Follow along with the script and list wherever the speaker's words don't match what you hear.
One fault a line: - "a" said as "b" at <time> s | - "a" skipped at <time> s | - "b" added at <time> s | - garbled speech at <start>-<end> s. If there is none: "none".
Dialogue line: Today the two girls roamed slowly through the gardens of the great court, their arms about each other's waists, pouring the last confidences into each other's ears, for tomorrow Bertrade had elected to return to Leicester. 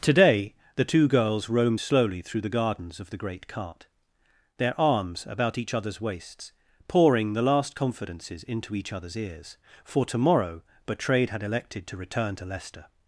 - "court" said as "cart" at 3.5 s